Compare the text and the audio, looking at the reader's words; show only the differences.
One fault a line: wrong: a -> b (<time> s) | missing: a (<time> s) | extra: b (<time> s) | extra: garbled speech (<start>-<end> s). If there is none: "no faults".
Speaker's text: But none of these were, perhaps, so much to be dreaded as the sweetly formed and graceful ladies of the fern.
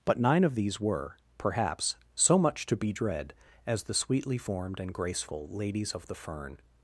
wrong: none -> nine (0.2 s)
wrong: dreaded -> dread (2.9 s)